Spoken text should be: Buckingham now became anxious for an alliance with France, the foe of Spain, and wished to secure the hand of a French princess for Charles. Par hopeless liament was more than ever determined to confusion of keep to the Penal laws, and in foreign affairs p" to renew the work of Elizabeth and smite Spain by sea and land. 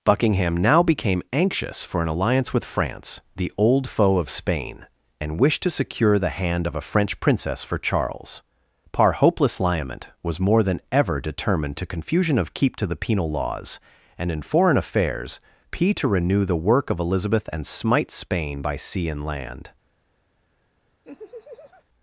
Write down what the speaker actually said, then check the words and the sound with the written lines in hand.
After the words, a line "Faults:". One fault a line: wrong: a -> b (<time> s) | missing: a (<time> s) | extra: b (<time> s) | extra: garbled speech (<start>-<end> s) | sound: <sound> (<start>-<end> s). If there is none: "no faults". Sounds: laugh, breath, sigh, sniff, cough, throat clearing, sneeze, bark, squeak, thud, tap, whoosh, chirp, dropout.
Buckingham now became anxious for an alliance with France, the old foe of Spain, and wished to secure the hand of a French princess for Charles. Par hopeless liament was more than ever determined to confusion of keep to the Penal laws, and in foreign affairs p" to renew the work of Elizabeth and smite Spain by sea and land.
Faults:
extra: old (3.5 s)
sound: laugh (21.0-21.8 s)